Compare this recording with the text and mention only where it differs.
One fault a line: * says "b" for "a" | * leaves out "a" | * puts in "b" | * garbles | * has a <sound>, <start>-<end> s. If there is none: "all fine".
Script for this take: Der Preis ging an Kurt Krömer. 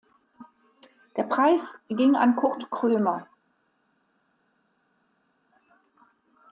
all fine